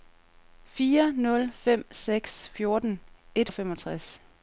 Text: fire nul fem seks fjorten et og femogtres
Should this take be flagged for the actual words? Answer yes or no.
no